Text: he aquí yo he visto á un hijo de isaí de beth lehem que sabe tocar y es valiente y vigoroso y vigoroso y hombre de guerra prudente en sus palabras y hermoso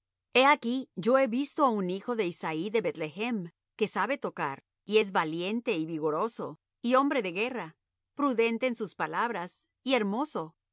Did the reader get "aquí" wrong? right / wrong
right